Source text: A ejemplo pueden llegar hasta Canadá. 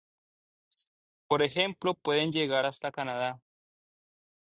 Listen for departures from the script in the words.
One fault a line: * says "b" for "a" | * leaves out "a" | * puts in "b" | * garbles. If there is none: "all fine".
* says "Por" for "A"